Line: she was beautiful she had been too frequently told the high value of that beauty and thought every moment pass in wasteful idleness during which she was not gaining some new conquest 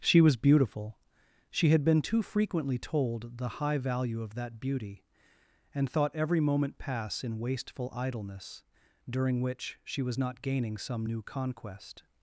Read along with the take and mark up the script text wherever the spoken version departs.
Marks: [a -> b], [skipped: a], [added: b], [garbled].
she was beautiful she had been too frequently told the high value of that beauty and thought every moment pass in wasteful idleness during which she was not gaining some new conquest